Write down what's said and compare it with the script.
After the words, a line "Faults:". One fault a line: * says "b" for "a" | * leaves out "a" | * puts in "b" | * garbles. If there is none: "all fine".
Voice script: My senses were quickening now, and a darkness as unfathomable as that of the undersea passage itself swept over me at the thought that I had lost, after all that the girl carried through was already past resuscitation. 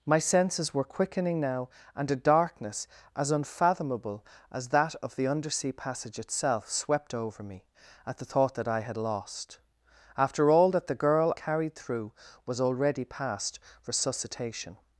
My senses were quickening now, and a darkness as unfathomable as that of the undersea passage itself swept over me at the thought that I had lost, after all that the girl carried through was already past resuscitation.
Faults:
all fine